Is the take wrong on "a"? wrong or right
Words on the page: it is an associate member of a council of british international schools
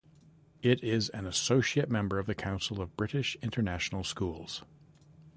wrong